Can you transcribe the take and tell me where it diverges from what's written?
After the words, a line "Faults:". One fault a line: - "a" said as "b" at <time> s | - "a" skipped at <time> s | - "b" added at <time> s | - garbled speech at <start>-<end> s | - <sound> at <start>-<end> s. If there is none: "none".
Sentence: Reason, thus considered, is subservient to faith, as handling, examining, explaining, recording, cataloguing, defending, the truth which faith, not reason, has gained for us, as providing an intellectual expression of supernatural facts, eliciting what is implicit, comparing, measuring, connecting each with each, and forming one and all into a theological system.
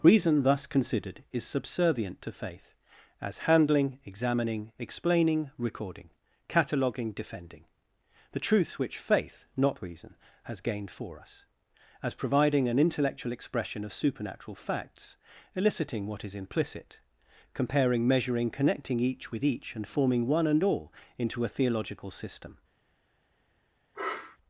Reason, thus considered, is subservient to faith, as handling, examining, explaining, recording, cataloguing, defending, the truth which faith, not reason, has gained for us, as providing an intellectual expression of supernatural facts, eliciting what is implicit, comparing, measuring, connecting each with each, and forming one and all into a theological system.
Faults:
- sniff at 23.9-24.4 s